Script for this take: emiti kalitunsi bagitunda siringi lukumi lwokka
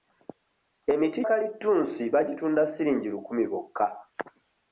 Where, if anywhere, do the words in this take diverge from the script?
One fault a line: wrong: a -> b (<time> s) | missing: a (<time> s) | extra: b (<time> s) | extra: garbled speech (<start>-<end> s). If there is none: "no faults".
no faults